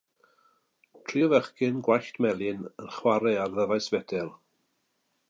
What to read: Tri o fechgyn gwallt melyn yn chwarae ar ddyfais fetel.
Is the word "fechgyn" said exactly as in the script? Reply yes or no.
yes